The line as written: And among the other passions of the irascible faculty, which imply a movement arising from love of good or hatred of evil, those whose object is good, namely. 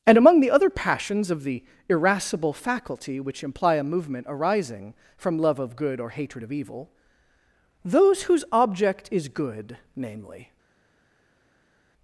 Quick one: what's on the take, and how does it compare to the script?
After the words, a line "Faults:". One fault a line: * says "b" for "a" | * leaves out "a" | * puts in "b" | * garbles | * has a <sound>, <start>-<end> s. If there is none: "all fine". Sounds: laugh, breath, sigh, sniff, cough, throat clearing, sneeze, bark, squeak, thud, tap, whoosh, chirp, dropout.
And among the other passions of the irascible faculty, which imply a movement arising from love of good or hatred of evil, those whose object is good, namely.
Faults:
all fine